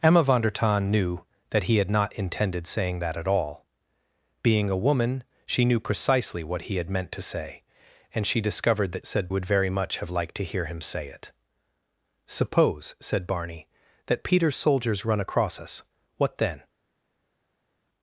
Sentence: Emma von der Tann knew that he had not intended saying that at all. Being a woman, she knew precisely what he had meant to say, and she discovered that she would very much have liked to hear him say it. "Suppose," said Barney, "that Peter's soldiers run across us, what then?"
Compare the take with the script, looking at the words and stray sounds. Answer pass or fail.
fail